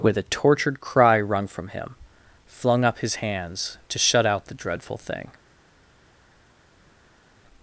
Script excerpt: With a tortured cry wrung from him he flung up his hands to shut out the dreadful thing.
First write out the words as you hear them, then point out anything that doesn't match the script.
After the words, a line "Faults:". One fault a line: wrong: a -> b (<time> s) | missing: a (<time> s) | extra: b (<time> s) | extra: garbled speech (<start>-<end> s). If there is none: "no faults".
With a tortured cry wrung from him flung up his hands to shut out the dreadful thing.
Faults:
missing: he (1.9 s)